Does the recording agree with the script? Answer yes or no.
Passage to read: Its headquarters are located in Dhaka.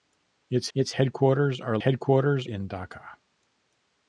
no